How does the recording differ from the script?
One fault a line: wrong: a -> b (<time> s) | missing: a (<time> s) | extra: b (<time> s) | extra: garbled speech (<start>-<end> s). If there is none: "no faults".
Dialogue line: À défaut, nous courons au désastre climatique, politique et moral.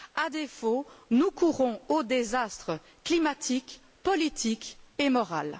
no faults